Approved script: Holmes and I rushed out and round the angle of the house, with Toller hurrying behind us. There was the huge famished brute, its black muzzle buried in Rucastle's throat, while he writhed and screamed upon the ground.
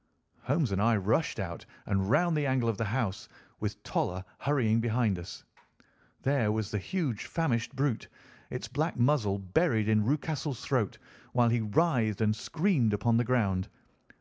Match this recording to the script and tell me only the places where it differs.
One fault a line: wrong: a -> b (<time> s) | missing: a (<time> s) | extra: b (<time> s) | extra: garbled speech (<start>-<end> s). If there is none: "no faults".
no faults